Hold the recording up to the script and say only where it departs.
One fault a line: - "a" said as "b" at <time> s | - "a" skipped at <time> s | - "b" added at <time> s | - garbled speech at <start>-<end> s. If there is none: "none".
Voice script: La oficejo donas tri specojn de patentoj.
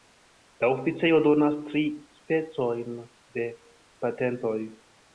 none